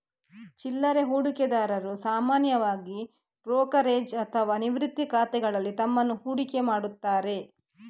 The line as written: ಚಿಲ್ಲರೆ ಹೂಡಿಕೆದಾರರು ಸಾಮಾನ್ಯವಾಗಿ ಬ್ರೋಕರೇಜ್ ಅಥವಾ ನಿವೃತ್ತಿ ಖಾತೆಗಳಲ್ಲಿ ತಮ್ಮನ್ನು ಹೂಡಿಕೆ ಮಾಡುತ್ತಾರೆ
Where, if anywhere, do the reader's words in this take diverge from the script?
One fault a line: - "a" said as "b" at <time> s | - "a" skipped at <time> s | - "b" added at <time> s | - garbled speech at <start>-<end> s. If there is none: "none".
none